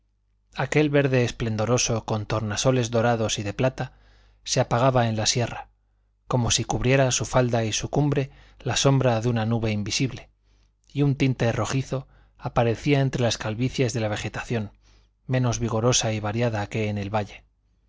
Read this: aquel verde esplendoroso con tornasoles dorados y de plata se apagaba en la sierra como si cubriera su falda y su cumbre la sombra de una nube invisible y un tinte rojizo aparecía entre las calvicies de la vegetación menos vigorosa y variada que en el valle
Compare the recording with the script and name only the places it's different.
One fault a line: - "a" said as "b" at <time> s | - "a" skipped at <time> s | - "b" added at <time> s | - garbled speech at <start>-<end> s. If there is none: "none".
none